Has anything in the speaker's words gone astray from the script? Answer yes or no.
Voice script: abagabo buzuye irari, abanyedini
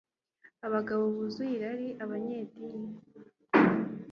no